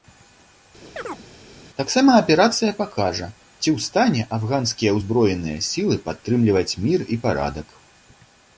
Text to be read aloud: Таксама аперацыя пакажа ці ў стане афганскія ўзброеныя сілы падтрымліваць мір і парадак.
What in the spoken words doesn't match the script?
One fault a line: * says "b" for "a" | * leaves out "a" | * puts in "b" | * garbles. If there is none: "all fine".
all fine